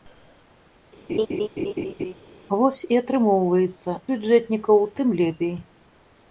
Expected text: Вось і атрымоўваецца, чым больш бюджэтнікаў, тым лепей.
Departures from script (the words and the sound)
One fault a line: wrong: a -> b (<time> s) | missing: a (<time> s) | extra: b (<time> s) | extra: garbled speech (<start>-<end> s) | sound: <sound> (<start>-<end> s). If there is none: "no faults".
sound: laugh (1.1-2.1 s)
missing: чым больш (4.0 s)